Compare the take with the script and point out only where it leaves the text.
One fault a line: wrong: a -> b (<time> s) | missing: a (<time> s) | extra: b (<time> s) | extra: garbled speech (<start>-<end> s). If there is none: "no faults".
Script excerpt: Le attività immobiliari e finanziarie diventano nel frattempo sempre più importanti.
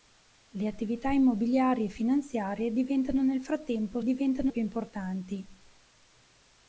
wrong: sempre -> diventano (4.0 s)